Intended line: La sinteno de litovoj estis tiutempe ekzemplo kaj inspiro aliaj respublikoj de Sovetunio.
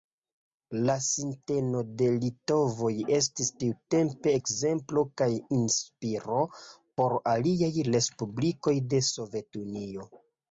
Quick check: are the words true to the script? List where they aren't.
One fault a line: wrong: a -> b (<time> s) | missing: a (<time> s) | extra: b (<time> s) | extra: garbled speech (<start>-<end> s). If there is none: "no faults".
extra: por (7.0 s)